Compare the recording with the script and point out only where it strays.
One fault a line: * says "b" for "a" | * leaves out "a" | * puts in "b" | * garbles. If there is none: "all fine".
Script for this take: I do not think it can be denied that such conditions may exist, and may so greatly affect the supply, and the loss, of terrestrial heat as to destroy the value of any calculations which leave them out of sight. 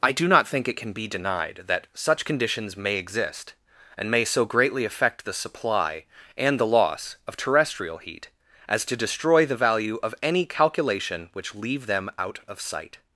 * says "calculation" for "calculations"